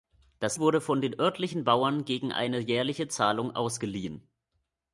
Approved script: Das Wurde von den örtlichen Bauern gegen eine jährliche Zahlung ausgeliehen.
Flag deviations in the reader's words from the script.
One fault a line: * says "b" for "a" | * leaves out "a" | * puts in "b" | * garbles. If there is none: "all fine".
all fine